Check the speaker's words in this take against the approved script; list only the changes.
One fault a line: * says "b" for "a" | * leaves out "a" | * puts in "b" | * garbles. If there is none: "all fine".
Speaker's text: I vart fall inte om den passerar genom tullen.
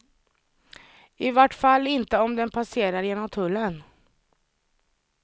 all fine